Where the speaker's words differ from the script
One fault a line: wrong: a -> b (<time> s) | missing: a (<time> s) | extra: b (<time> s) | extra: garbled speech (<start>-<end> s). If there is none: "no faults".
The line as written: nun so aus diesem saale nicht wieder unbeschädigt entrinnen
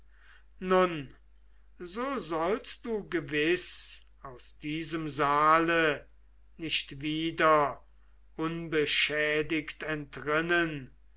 extra: sollst du gewiß (2.2 s)